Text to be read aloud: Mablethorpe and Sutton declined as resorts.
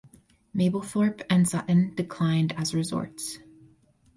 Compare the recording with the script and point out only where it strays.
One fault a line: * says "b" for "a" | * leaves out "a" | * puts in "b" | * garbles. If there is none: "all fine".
all fine